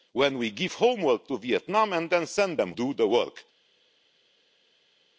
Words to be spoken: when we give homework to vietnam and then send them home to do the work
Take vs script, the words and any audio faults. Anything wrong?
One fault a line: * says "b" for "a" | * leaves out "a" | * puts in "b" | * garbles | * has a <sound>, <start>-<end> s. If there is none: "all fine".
* leaves out "home to"